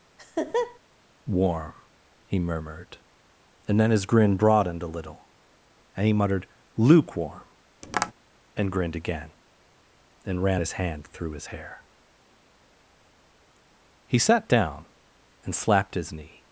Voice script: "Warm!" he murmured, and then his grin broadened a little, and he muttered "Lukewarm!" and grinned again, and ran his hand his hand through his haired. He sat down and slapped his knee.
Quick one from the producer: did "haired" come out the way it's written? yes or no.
no